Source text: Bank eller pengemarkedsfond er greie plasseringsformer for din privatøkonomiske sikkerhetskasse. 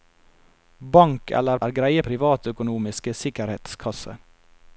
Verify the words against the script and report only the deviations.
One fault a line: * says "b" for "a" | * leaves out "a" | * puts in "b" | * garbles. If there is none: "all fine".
* leaves out "pengemarkedsfond"
* leaves out "plasseringsformer for din"